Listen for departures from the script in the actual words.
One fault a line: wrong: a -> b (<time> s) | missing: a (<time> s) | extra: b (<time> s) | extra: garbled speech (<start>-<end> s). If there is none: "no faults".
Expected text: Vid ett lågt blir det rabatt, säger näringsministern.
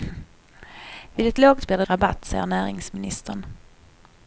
no faults